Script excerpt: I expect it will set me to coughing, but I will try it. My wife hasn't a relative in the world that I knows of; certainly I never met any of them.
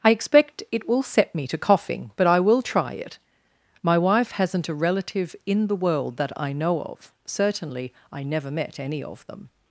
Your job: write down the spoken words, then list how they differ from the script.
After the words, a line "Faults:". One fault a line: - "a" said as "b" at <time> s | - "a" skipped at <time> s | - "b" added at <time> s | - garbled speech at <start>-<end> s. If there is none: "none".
I expect it will set me to coughing, but I will try it. My wife hasn't a relative in the world that I know of; certainly I never met any of them.
Faults:
- "knows" said as "know" at 6.5 s